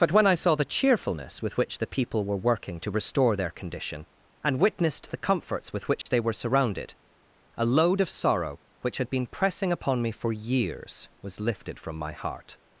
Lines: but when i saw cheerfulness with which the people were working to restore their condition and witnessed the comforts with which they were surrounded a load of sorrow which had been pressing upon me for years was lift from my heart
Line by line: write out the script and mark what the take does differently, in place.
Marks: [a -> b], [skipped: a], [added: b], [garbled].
but when i saw [added: the] cheerfulness with which the people were working to restore their condition and witnessed the comforts with which they were surrounded a load of sorrow which had been pressing upon me for years was [lift -> lifted] from my heart